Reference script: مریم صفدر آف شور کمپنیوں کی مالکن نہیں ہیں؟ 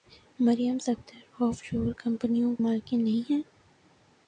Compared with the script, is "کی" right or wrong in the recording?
wrong